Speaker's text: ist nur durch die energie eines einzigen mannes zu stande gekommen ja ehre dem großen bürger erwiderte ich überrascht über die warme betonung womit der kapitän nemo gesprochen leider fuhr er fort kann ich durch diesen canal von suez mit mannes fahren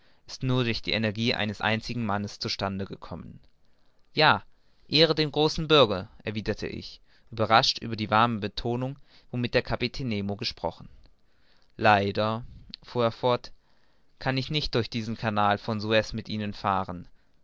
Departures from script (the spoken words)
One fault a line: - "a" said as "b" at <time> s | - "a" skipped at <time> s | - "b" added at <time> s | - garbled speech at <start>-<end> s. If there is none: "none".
- "nicht" added at 14.5 s
- "mannes" said as "ihnen" at 16.3 s